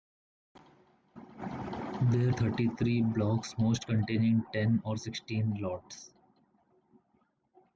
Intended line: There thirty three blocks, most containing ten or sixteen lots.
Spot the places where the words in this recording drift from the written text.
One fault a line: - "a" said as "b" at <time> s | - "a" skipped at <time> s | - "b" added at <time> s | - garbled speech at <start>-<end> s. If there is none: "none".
none